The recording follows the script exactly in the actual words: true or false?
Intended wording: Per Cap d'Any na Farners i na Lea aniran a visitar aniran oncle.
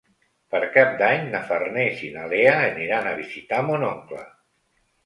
false